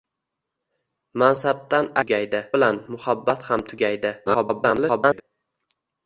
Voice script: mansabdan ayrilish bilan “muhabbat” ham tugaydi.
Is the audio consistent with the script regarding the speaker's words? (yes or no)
no